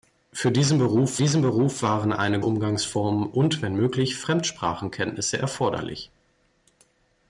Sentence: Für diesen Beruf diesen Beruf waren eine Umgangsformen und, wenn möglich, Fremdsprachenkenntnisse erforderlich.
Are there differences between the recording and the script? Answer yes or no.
no